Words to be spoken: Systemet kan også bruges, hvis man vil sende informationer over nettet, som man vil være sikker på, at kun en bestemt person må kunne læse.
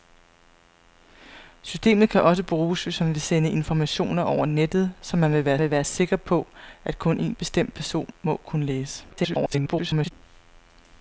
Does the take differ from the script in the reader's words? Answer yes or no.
yes